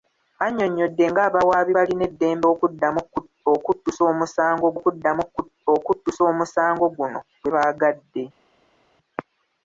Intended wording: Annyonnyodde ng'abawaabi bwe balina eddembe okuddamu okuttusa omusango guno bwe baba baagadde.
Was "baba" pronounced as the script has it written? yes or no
no